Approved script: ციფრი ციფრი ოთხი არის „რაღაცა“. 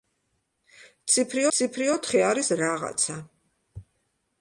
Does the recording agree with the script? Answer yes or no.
yes